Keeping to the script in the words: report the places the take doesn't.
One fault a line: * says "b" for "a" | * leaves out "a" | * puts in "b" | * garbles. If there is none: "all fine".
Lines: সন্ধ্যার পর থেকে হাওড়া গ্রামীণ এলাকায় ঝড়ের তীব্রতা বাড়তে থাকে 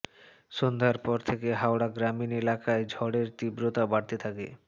all fine